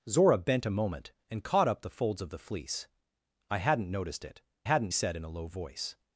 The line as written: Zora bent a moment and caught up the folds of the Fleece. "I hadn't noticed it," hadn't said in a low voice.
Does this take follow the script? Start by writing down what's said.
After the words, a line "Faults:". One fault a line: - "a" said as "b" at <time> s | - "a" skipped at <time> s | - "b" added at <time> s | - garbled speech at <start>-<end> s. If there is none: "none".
Zora bent a moment and caught up the folds of the Fleece. "I hadn't noticed it," hadn't said in a low voice.
Faults:
none